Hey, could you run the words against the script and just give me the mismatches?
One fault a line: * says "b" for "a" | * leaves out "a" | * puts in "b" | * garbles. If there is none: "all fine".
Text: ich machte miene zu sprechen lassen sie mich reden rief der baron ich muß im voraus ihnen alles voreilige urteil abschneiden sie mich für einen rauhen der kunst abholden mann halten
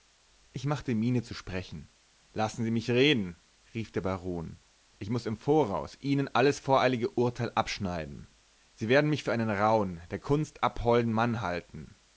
* puts in "werden"